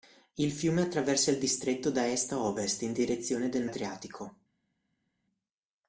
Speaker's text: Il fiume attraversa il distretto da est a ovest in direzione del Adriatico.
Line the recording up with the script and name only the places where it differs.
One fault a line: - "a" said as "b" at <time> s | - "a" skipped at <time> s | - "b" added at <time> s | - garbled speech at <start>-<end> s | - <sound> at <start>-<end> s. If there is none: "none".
none